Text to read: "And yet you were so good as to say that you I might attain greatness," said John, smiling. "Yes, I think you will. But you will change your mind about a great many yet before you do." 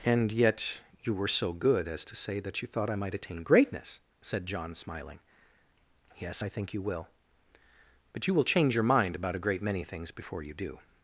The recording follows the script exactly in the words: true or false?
false